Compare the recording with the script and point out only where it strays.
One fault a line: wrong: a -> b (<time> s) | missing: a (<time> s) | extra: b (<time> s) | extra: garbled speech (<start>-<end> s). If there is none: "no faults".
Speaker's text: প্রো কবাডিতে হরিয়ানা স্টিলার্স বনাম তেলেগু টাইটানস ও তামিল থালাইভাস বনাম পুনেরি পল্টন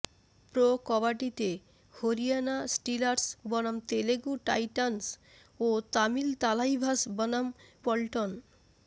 missing: পুনেরি (7.5 s)